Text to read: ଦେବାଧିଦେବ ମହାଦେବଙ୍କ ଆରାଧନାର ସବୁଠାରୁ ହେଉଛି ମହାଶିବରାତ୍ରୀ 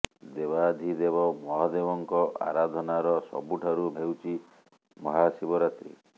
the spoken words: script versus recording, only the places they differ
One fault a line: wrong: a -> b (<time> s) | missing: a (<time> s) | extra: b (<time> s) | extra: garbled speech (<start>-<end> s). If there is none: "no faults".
no faults